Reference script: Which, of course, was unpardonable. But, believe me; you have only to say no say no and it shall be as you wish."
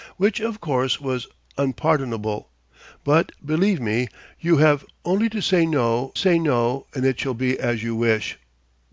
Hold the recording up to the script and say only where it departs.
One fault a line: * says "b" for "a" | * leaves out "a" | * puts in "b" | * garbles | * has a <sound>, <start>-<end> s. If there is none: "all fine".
all fine